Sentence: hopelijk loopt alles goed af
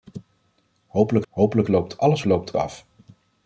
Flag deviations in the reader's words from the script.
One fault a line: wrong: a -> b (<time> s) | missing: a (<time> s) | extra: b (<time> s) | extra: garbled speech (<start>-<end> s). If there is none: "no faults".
extra: hopelijk (1.3 s)
wrong: goed -> loopt (2.2 s)